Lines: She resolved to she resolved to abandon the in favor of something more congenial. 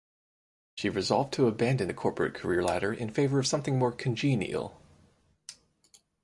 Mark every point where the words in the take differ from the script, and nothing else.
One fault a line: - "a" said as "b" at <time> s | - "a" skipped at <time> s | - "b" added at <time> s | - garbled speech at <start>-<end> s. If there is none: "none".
- "she resolved to abandon the" said as "abandon the corporate career ladder" at 1.5 s